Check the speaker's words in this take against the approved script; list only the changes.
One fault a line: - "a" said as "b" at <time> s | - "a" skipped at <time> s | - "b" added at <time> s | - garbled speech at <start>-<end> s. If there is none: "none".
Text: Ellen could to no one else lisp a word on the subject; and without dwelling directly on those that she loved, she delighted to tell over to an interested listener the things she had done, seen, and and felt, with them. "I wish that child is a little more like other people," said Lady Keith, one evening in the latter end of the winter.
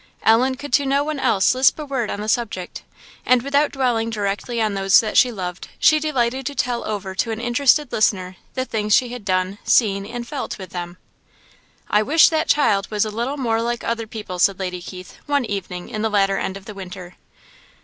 - "and" skipped at 10.3 s
- "is" said as "was" at 12.9 s